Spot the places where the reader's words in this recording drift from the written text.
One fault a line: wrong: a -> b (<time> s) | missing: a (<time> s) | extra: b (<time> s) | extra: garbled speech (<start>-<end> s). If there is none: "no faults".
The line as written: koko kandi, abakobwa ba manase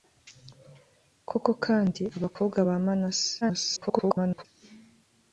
extra: garbled speech (3.4-4.4 s)